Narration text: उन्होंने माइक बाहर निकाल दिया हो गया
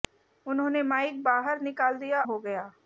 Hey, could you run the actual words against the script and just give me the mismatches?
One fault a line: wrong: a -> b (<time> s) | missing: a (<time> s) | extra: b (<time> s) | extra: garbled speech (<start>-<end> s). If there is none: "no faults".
no faults